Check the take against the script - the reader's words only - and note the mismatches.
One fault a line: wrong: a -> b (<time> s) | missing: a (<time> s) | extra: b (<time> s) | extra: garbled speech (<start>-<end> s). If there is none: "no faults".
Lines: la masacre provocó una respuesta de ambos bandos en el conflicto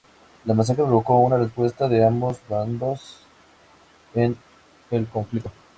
no faults